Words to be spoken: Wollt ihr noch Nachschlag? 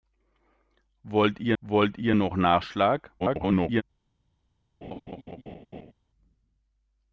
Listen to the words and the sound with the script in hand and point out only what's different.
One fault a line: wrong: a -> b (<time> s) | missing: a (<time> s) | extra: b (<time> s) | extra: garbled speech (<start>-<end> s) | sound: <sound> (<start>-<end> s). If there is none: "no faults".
extra: wollt ihr (1.6 s)
extra: garbled speech (3.2-3.8 s)
sound: laugh (4.8-5.9 s)